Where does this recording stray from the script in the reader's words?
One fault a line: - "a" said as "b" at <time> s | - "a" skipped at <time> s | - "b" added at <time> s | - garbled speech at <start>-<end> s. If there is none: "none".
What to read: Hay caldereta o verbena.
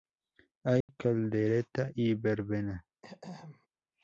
- "o" said as "y" at 2.0 s